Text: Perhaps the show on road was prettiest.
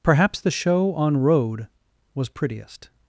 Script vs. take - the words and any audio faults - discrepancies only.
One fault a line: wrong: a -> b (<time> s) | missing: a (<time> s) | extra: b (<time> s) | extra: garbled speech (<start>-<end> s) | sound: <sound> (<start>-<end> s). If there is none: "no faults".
no faults